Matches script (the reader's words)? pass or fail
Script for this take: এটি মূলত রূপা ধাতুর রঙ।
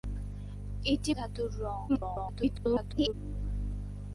fail